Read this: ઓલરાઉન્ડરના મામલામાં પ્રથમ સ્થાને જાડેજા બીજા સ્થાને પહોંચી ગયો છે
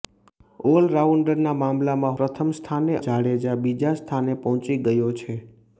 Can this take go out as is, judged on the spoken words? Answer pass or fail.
pass